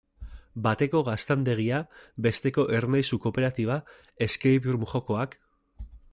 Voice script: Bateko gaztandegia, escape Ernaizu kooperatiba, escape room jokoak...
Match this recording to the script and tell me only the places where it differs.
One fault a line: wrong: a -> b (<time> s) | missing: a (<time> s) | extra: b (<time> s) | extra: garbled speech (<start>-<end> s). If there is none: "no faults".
wrong: escape -> besteko (2.3 s)